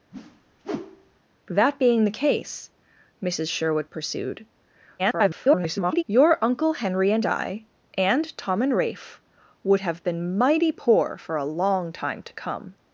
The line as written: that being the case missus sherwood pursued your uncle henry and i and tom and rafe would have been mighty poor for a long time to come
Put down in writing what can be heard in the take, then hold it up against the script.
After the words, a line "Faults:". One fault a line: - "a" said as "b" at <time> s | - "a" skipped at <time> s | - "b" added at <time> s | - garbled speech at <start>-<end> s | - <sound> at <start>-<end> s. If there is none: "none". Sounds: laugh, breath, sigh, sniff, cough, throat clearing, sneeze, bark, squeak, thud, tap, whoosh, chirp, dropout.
that being the case missus sherwood pursued [garbled] your uncle henry and i and tom and rafe would have been mighty poor for a long time to come
Faults:
- whoosh at 0.1-1.2 s
- garbled speech at 5.0-6.0 s